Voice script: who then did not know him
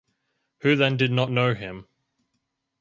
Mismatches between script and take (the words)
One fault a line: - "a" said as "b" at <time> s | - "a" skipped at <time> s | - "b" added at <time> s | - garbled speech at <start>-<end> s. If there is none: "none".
none